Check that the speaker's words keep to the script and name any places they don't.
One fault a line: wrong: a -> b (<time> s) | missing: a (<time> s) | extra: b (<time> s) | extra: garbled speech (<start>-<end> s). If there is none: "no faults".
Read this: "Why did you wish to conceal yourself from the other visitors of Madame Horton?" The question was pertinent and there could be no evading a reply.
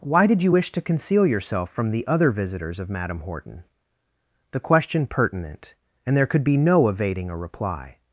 missing: was (5.1 s)